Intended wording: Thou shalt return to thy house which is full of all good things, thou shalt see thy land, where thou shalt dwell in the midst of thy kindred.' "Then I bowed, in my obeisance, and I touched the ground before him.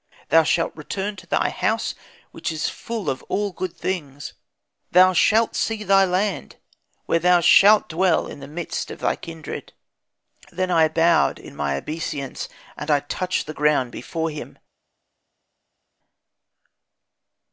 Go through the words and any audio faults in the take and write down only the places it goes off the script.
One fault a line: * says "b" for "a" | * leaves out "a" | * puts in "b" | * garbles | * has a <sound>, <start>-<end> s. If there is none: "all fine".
all fine